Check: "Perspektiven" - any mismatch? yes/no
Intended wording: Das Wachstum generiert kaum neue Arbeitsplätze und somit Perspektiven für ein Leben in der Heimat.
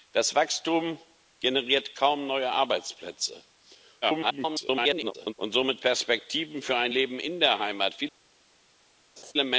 no